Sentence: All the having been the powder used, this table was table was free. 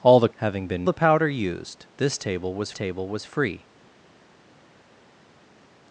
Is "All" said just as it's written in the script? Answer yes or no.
yes